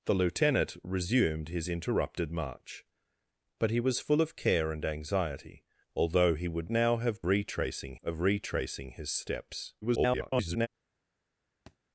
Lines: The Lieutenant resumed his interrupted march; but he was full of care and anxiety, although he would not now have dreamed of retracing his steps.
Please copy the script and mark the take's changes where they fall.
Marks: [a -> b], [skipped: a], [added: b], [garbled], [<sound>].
The Lieutenant resumed his interrupted march; but he was full of care and anxiety, although he would [skipped: not] now have [dreamed -> retracing] of retracing his steps. [garbled] [thud]